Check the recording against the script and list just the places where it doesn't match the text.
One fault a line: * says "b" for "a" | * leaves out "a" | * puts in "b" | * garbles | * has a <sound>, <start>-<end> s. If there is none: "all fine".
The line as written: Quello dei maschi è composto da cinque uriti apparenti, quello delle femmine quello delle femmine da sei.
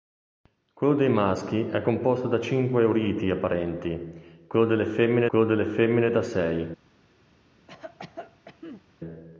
* has a cough, 7.7-8.8 s